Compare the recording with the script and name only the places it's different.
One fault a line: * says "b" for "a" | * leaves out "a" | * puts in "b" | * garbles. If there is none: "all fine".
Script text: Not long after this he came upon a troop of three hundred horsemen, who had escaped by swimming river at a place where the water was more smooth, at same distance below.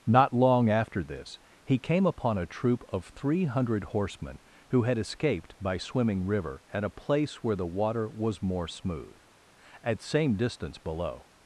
all fine